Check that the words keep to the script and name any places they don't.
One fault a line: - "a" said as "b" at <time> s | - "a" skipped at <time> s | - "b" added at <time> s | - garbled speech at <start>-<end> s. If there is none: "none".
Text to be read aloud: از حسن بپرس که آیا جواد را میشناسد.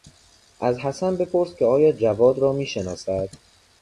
none